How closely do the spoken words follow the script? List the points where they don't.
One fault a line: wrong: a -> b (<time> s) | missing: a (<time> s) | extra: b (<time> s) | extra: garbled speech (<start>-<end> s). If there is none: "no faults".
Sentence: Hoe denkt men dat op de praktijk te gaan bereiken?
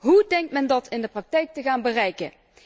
wrong: op -> in (0.9 s)